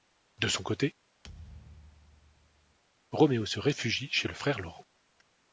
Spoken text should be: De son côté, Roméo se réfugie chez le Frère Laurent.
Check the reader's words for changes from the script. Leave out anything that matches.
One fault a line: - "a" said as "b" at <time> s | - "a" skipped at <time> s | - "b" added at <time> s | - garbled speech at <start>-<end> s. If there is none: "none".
none